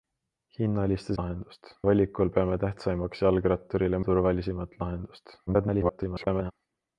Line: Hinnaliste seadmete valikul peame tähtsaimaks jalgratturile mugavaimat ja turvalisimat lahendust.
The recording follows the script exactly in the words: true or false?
false